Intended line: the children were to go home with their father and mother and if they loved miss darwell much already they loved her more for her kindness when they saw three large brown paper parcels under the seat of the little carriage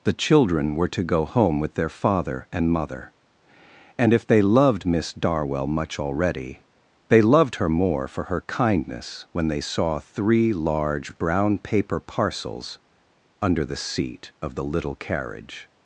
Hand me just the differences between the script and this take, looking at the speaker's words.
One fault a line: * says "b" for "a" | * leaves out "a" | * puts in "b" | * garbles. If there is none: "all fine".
all fine